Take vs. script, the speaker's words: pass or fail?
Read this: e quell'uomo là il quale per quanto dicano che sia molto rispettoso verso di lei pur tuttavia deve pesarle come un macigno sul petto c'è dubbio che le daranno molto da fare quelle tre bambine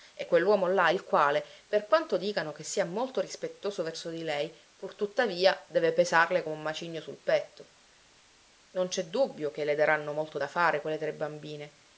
fail